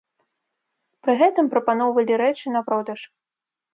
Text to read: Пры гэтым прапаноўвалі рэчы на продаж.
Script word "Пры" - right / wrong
right